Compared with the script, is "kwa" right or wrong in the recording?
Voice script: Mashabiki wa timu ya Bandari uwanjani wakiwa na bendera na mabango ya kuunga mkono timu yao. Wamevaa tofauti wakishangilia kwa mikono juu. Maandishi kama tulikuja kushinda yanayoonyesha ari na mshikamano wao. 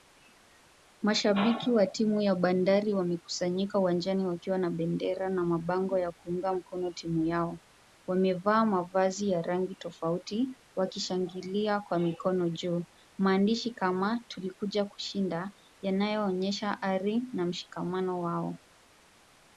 right